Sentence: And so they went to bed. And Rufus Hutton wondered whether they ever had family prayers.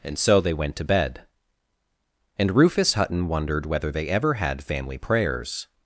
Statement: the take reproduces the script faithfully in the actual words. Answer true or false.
true